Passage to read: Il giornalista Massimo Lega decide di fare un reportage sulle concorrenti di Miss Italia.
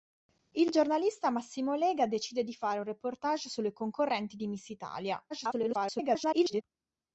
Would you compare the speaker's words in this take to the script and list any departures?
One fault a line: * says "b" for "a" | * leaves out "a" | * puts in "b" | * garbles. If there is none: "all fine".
* garbles